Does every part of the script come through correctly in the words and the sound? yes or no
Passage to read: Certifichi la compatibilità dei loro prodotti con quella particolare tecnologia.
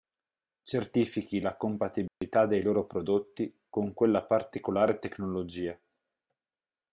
no